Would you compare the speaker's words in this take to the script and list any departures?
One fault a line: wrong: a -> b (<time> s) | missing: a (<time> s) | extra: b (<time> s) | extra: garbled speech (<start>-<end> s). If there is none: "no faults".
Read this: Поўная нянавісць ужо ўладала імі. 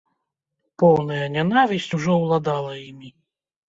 no faults